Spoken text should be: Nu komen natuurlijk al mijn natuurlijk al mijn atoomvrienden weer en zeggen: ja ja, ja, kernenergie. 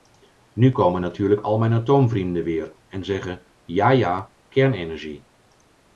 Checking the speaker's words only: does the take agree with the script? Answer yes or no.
no